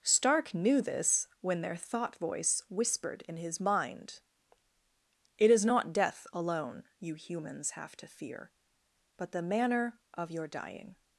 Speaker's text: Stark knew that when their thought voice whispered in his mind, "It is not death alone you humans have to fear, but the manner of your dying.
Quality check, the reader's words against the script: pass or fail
fail